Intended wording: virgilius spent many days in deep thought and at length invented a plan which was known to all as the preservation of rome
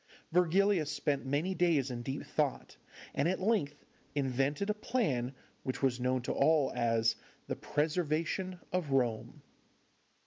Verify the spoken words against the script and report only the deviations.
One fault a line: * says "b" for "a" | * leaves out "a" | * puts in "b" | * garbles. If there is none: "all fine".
all fine